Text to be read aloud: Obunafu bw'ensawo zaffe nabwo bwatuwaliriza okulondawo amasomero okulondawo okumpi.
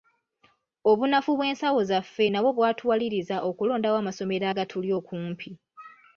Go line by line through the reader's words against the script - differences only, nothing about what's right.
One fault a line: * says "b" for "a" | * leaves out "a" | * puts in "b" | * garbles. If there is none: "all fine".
* says "agatuli" for "okulondawo"